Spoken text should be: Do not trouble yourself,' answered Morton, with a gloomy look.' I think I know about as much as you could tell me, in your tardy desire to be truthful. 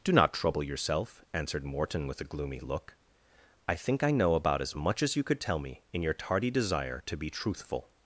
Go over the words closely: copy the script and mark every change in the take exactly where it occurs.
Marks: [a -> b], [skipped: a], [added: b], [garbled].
Do not trouble yourself,' answered Morton, with a gloomy look.' I think I know about as much as you could tell me, in your tardy desire to be truthful.